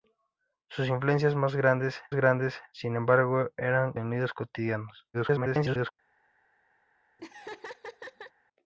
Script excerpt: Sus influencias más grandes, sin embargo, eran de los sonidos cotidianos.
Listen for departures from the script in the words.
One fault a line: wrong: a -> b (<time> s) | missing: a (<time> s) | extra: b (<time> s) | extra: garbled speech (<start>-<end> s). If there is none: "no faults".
extra: grandes (2.1 s)
missing: de los (3.9 s)
extra: garbled speech (5.1-5.9 s)